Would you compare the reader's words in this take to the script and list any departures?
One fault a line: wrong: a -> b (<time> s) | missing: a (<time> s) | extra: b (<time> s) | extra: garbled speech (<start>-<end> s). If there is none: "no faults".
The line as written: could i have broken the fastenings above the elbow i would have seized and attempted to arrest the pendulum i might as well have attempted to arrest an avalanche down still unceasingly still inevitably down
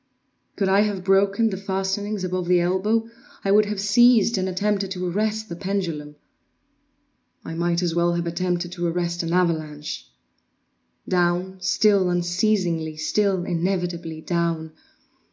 no faults